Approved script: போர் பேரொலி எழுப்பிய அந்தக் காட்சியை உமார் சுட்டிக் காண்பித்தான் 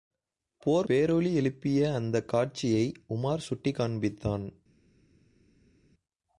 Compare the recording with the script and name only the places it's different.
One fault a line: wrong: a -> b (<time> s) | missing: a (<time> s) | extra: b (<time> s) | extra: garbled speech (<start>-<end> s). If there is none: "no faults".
no faults